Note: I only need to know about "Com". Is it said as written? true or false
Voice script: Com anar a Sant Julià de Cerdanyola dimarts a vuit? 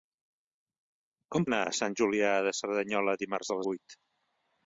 true